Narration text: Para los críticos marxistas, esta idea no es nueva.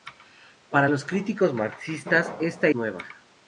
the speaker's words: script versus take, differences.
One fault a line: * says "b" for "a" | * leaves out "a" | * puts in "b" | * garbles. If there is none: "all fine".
* leaves out "idea no es"